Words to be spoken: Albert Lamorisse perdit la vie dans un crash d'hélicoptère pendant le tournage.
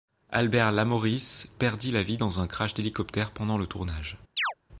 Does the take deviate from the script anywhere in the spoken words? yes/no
no